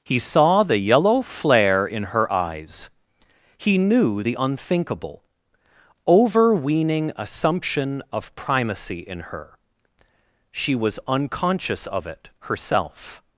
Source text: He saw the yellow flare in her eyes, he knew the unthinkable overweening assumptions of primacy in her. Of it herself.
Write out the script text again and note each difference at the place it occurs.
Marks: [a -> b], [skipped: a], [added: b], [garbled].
He saw the yellow flare in her eyes, he knew the unthinkable overweening [assumptions -> assumption] of primacy in her. [added: She was unconscious] Of it herself.